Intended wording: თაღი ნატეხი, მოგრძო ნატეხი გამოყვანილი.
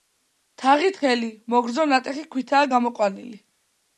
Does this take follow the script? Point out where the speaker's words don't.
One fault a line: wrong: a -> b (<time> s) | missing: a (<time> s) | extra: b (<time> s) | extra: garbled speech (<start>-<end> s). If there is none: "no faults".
wrong: ნატეხი -> თხელი (0.9 s)
extra: ქვითაა (2.4 s)